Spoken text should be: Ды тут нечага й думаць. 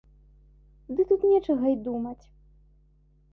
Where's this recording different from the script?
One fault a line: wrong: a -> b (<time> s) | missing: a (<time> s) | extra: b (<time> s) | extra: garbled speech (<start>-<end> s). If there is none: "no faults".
no faults